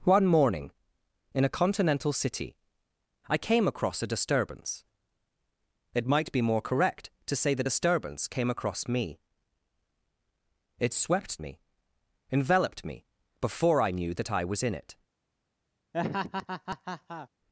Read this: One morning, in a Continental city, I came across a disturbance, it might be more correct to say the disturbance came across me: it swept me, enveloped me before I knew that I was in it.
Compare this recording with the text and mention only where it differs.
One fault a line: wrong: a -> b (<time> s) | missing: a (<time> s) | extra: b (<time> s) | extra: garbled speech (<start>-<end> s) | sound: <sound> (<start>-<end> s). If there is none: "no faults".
sound: laugh (15.9-17.3 s)